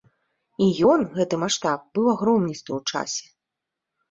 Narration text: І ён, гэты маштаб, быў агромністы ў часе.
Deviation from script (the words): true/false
false